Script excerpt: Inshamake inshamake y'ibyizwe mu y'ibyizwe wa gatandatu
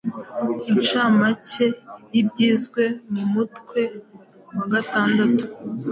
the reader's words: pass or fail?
fail